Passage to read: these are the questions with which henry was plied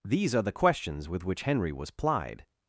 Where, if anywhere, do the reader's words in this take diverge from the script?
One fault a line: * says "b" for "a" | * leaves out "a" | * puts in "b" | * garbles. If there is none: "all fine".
all fine